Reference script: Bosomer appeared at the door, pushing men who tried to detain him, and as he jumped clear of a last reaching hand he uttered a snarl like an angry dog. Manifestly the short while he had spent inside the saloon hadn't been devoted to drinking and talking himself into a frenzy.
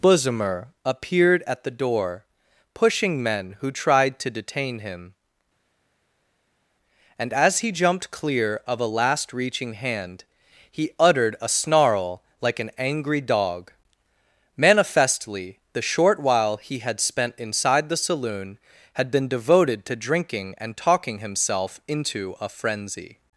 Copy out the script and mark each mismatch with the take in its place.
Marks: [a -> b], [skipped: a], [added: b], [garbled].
Bosomer appeared at the door, pushing men who tried to detain him, and as he jumped clear of a last reaching hand he uttered a snarl like an angry dog. Manifestly the short while he had spent inside the saloon [hadn't -> had] been devoted to drinking and talking himself into a frenzy.